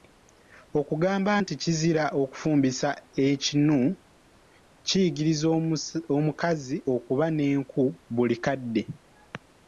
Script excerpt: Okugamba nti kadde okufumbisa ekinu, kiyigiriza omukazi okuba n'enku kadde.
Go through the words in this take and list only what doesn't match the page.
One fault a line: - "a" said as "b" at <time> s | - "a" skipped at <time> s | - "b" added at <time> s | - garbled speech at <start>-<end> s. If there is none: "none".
- "kadde" said as "kizira" at 1.6 s
- "buli" added at 8.1 s